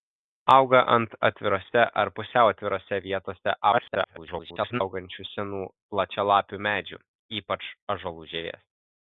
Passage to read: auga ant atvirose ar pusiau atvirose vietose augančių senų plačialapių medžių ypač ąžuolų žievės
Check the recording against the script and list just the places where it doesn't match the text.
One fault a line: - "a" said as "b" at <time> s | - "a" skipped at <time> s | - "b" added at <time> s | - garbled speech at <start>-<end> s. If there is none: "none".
- garbled speech at 3.7-4.8 s